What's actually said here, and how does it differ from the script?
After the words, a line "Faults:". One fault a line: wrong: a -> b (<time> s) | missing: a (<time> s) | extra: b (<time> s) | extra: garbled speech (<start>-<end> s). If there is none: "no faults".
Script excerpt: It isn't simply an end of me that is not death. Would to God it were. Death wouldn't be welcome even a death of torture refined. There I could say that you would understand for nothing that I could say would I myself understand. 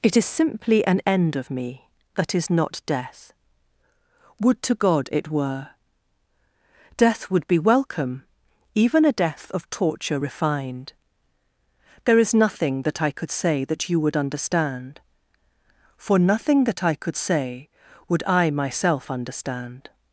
It is simply an end of me that is not death. Would to God it were. Death would be welcome even a death of torture refined. There is nothing that I could say that you would understand for nothing that I could say would I myself understand.
Faults:
wrong: isn't -> is (0.1 s)
wrong: wouldn't -> would (7.3 s)
extra: is nothing that (12.2 s)